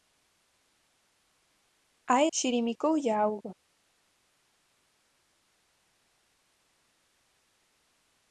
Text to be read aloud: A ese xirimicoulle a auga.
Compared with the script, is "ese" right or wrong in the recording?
wrong